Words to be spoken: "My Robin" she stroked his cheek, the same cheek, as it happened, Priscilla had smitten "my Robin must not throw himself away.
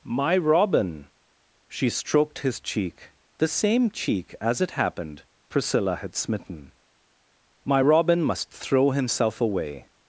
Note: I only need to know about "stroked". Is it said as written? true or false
true